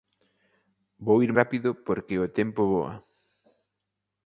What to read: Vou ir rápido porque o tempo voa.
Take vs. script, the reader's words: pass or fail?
pass